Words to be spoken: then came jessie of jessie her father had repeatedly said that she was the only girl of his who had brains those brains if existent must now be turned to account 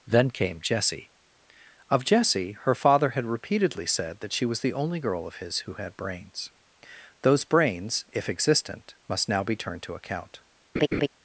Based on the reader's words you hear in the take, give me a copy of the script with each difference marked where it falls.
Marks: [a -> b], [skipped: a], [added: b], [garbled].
then came jessie of jessie her father had repeatedly said that she was the only girl of his who had brains those brains if existent must now be turned to account